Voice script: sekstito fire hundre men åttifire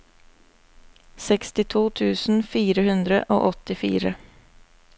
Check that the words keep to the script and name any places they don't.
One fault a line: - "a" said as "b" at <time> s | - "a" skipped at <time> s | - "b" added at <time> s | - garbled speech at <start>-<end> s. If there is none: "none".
- "tusen" added at 2.0 s
- "men" said as "og" at 3.4 s